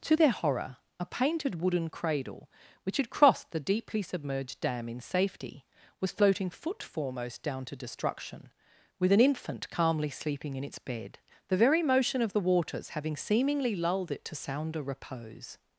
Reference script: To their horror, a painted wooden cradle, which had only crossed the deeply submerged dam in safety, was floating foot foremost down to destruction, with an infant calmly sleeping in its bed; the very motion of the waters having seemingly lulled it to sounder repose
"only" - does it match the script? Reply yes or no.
no